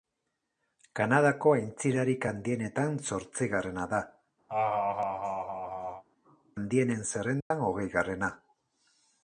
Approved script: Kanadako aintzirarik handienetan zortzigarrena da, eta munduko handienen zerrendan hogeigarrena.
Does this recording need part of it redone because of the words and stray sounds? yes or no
yes